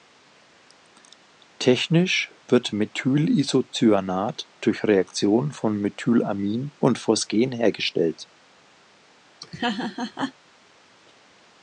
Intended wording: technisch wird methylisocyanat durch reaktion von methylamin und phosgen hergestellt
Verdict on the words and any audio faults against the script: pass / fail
fail